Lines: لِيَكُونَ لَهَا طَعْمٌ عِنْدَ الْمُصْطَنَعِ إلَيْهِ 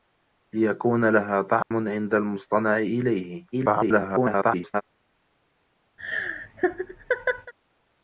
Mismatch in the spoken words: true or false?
true